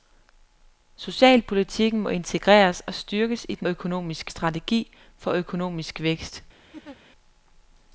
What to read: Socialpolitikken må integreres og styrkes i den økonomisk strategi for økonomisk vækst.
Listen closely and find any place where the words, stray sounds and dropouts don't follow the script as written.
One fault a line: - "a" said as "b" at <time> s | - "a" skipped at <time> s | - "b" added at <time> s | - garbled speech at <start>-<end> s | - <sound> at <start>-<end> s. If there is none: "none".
- laugh at 6.7-7.0 s